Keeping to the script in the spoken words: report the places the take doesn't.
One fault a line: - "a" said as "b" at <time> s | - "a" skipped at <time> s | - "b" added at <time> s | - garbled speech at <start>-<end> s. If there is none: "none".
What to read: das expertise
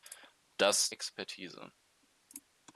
none